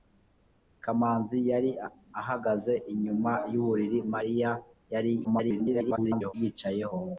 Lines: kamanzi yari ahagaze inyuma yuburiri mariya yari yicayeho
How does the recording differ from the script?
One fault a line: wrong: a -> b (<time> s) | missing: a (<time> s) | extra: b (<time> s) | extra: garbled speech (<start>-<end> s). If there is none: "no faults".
extra: garbled speech (5.2-6.3 s)